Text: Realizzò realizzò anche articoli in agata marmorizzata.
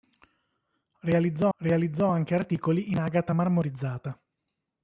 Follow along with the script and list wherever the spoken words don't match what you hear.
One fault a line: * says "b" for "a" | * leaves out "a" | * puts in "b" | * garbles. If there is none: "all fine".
all fine